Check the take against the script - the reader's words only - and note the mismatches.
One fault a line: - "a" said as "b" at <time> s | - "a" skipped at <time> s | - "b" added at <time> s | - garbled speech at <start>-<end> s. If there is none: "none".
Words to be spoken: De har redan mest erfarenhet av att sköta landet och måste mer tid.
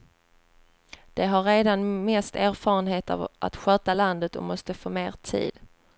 - "få" added at 4.7 s